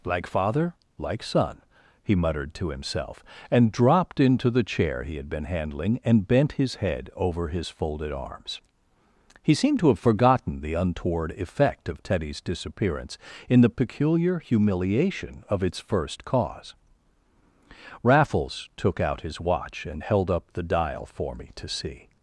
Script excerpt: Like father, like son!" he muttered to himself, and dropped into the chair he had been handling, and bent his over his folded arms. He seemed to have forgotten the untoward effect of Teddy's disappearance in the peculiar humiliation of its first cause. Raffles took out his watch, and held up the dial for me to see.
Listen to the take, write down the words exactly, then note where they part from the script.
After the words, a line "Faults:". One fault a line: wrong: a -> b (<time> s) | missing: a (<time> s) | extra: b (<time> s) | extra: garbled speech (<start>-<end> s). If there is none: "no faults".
Like father, like son!" he muttered to himself, and dropped into the chair he had been handling, and bent his head over his folded arms. He seemed to have forgotten the untoward effect of Teddy's disappearance in the peculiar humiliation of its first cause. Raffles took out his watch, and held up the dial for me to see.
Faults:
extra: head (6.8 s)